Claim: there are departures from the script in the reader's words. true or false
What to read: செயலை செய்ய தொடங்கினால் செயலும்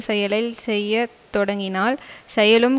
false